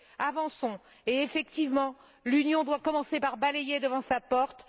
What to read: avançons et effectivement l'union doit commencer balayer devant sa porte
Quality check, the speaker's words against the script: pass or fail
fail